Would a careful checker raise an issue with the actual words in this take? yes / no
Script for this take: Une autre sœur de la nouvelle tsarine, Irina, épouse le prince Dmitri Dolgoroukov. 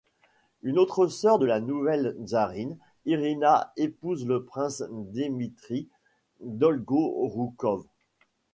no